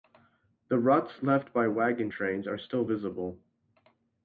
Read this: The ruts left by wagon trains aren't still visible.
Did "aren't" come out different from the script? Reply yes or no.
yes